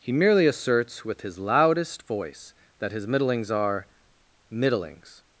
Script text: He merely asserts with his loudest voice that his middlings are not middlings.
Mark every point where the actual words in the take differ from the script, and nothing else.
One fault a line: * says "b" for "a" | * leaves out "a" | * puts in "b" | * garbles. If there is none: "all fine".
* leaves out "not"